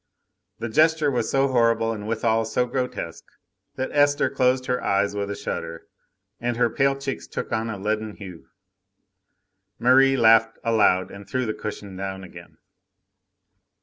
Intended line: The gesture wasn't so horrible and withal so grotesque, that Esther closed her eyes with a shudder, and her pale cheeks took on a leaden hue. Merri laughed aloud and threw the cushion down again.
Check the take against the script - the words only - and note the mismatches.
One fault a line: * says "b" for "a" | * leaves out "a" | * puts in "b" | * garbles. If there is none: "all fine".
* says "was" for "wasn't"